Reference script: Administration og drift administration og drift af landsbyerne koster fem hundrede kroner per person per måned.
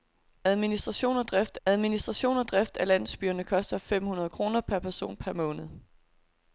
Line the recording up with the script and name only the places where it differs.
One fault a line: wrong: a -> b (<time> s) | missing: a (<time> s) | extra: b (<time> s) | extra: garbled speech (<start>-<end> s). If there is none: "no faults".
no faults